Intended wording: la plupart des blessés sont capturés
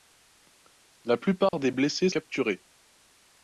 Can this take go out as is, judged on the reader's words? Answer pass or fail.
fail